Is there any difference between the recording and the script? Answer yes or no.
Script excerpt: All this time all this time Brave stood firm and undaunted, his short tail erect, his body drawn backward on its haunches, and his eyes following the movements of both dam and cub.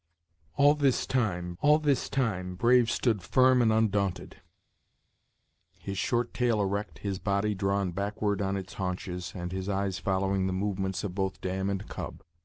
no